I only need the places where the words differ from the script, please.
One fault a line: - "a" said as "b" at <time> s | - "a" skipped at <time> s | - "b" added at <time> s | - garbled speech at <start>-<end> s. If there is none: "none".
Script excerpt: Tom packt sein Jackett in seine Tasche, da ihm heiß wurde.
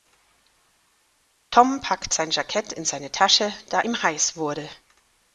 none